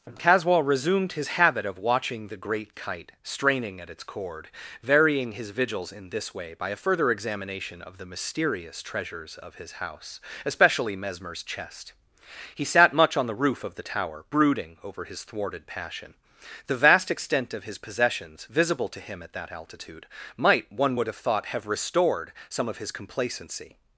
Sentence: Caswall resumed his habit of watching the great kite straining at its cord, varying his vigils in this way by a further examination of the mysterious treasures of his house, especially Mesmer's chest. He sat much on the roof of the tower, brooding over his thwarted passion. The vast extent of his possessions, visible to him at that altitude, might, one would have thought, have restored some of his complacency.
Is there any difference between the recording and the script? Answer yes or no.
no